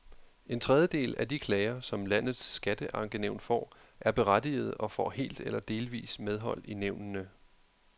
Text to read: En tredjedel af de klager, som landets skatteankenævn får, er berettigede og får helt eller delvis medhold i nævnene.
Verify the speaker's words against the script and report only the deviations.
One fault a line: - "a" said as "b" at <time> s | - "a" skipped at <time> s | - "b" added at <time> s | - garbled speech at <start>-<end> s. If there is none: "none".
none